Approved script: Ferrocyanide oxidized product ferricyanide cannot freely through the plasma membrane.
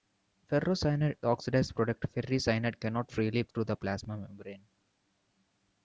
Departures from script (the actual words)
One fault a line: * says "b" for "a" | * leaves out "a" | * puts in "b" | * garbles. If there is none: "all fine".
all fine